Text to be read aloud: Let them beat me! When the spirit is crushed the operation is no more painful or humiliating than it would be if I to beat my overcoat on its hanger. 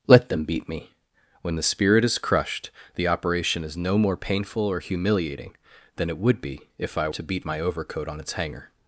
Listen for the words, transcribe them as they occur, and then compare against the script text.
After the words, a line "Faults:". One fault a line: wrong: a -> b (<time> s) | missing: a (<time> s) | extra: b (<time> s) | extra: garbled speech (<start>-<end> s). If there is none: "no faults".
Let them beat me! When the spirit is crushed the operation is no more painful or humiliating than it would be if I to beat my overcoat on its hanger.
Faults:
no faults